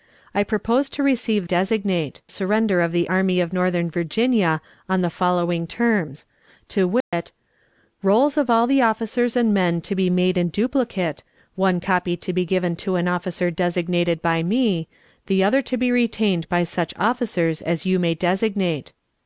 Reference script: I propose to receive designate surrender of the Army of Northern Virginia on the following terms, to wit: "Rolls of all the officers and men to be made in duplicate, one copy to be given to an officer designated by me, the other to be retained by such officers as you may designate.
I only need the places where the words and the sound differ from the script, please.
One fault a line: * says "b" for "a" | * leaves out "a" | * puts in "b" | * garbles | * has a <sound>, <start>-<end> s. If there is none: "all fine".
* has a dropout, 7.0-7.1 s